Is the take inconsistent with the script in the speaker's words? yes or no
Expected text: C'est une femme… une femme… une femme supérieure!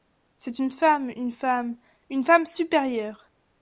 no